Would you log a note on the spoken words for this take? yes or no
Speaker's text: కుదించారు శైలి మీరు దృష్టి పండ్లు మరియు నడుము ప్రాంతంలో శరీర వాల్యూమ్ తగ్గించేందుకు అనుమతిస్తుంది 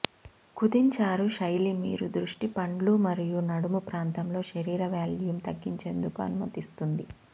no